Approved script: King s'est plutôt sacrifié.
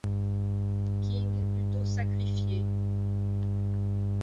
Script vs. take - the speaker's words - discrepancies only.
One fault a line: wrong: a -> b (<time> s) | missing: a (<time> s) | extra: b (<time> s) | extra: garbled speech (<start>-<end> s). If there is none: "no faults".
missing: s'est (1.3 s)